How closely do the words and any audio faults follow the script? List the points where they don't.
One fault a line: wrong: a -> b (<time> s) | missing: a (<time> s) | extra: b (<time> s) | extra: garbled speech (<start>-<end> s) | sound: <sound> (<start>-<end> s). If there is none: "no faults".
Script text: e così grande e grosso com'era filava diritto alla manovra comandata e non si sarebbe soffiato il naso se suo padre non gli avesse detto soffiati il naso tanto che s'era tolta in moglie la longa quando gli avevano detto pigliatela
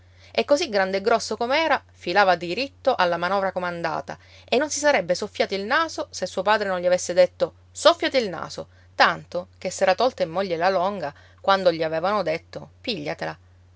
no faults